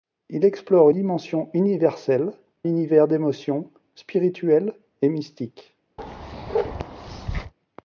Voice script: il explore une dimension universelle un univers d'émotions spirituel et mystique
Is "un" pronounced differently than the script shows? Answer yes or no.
yes